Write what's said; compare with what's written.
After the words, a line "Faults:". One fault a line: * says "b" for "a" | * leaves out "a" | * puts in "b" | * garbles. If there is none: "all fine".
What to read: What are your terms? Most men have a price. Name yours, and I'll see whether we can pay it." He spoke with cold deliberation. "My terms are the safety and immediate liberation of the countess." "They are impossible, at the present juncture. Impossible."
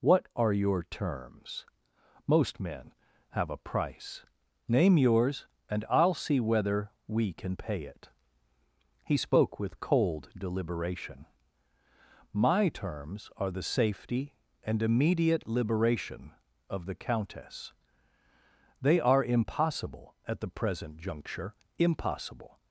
What are your terms? Most men have a price. Name yours, and I'll see whether we can pay it." He spoke with cold deliberation. "My terms are the safety and immediate liberation of the countess." "They are impossible, at the present juncture. Impossible."
Faults:
all fine